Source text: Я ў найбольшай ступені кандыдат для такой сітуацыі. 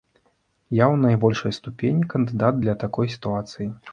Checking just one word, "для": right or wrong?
right